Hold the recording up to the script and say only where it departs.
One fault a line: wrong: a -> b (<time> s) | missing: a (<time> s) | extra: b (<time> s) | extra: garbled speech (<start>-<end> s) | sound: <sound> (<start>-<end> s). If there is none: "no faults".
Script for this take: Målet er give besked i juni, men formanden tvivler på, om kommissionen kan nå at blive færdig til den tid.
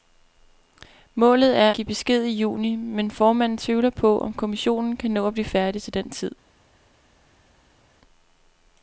no faults